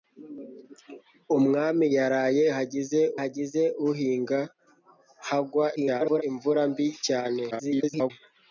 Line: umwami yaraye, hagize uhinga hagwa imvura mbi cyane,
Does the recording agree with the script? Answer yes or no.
no